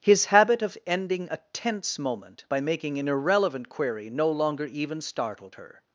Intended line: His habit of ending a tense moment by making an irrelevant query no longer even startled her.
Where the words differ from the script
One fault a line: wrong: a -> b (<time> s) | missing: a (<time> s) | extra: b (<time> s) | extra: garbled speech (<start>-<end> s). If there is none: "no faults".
no faults